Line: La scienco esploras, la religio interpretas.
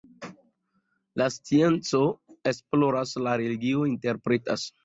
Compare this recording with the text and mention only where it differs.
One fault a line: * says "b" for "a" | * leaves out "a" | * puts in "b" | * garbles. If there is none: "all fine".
all fine